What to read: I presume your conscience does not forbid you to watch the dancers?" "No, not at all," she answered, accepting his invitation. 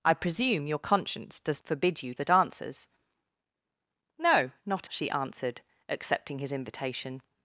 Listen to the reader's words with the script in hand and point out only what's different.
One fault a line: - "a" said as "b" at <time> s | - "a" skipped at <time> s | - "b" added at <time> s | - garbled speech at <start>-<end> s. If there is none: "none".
- "not" skipped at 1.6 s
- "to watch" skipped at 2.1 s
- "at all" skipped at 4.9 s